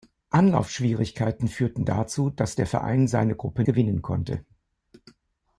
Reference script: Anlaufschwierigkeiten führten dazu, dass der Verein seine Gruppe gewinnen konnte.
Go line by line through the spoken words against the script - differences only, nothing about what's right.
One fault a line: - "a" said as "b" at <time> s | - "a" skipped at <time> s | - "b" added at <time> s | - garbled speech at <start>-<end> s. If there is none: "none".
none